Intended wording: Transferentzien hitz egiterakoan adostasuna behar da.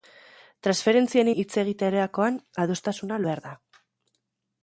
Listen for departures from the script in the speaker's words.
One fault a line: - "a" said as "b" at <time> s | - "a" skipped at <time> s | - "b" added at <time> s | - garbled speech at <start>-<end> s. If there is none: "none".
none